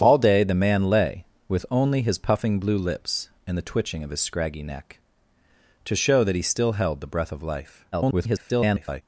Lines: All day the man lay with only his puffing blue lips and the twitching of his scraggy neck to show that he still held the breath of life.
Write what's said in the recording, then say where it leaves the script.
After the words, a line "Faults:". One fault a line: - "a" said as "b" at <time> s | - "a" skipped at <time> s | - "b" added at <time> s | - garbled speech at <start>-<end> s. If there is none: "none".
All day the man lay with only his puffing blue lips and the twitching of his scraggy neck to show that he still held the breath of life. [garbled]
Faults:
- garbled speech at 7.9-9.0 s